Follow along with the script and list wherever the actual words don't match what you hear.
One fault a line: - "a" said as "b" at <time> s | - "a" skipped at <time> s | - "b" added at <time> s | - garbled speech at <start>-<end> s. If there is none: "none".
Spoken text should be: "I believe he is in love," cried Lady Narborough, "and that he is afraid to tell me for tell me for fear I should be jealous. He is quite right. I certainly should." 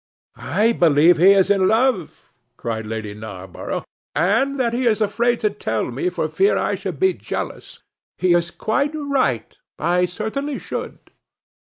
- "tell me for" skipped at 6.3 s